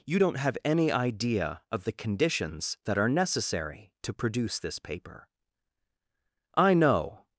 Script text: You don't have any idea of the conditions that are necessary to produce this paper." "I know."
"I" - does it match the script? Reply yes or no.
yes